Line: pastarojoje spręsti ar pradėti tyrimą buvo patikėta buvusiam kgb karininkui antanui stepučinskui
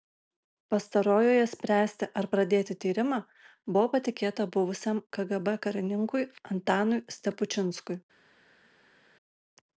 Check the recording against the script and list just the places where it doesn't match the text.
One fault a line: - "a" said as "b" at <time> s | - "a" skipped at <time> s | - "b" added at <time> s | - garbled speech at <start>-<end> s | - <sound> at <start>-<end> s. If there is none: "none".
none